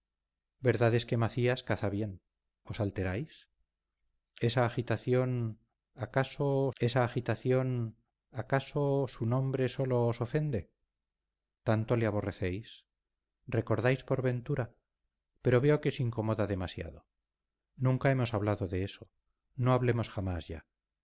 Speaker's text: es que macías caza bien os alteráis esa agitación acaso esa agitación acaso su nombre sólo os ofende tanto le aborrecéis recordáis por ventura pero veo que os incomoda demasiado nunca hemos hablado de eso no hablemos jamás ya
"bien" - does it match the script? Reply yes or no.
yes